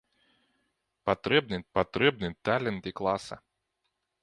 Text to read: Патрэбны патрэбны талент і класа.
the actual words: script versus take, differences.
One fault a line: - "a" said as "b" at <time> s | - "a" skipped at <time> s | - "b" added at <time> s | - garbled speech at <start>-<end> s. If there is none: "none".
none